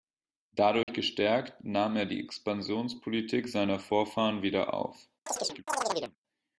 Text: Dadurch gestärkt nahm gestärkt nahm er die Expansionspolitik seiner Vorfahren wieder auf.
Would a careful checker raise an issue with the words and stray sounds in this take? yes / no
yes